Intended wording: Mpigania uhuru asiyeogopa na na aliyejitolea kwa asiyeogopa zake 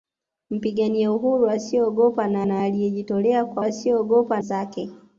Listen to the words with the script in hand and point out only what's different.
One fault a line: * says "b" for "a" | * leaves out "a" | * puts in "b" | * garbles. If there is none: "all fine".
all fine